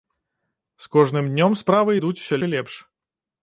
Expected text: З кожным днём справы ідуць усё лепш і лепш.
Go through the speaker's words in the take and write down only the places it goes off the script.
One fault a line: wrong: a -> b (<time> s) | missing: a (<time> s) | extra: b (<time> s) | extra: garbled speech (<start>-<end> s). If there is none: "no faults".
missing: лепш (2.3 s)